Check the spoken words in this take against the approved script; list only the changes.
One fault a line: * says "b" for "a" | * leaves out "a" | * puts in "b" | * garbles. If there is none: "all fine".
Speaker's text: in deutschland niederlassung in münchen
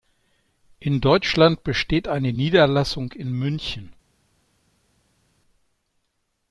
* puts in "besteht eine"